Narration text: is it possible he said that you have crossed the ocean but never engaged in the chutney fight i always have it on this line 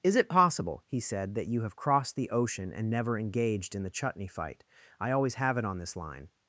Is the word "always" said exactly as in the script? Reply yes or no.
yes